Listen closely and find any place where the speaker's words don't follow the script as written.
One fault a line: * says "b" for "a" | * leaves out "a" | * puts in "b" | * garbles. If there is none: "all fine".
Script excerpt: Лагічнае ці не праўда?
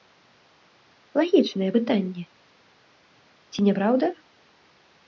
* puts in "пытанне"